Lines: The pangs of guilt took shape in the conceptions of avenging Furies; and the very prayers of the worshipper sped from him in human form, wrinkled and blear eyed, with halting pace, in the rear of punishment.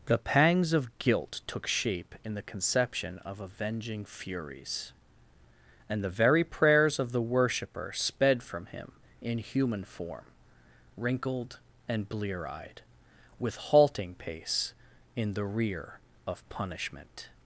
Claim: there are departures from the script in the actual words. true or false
true